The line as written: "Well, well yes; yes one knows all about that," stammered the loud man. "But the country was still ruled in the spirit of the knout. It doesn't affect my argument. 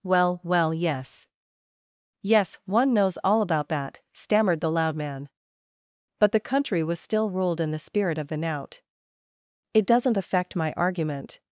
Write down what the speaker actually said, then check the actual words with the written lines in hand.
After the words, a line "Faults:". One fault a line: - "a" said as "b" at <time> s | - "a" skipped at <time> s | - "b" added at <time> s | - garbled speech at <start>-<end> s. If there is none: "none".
"Well, well yes; yes one knows all about that," stammered the loud man. "But the country was still ruled in the spirit of the knout. It doesn't affect my argument.
Faults:
none